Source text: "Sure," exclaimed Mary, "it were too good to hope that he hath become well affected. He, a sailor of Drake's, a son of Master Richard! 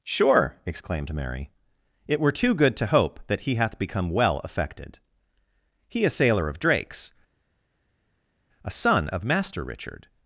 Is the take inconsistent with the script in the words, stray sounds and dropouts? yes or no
no